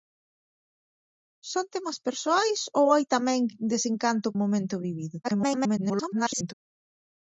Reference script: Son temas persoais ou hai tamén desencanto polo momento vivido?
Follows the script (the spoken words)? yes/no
no